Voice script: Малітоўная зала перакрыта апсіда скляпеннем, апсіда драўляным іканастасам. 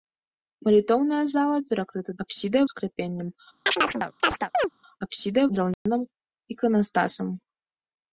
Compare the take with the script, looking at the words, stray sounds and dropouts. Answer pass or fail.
fail